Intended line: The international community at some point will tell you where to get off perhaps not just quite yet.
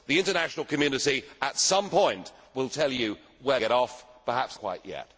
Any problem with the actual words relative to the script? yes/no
yes